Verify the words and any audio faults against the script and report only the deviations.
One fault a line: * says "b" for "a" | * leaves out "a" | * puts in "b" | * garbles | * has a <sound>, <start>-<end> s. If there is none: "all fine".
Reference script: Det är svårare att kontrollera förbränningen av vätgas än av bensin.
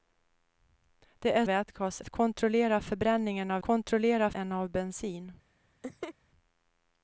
* says "vätgas" for "svårare"
* says "kontrollera" for "vätgas"
* has a laugh, 5.8-6.1 s